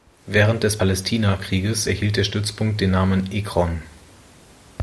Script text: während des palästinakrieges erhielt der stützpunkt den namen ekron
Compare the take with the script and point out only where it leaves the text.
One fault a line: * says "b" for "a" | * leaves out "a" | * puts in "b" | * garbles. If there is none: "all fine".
all fine